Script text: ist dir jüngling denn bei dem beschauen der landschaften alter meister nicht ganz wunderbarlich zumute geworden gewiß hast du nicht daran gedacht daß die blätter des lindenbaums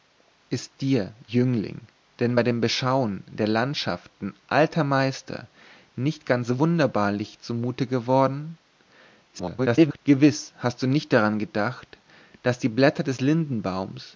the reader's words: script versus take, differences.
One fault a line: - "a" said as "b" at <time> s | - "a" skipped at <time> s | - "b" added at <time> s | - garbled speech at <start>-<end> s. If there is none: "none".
- garbled speech at 9.3-10.0 s